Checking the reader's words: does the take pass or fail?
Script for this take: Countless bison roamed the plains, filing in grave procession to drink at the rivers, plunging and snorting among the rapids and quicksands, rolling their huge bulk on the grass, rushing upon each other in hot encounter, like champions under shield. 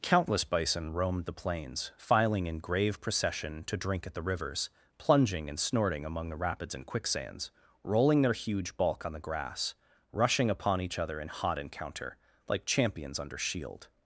pass